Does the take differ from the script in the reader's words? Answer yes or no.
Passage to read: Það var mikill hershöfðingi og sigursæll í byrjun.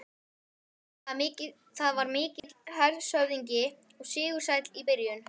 no